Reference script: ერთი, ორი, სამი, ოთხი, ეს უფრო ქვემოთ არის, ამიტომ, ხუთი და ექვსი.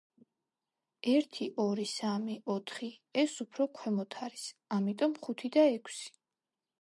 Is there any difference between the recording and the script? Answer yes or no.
no